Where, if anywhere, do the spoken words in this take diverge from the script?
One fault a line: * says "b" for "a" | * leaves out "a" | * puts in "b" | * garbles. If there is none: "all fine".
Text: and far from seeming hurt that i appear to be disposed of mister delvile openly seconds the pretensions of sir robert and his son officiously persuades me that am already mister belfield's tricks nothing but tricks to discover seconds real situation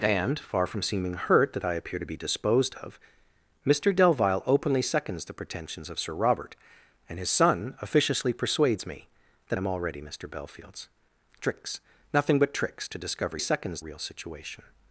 all fine